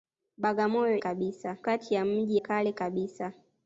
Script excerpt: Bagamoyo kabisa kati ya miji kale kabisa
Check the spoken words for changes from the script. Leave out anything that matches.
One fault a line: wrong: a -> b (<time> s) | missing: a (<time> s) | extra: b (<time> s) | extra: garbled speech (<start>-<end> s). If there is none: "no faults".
no faults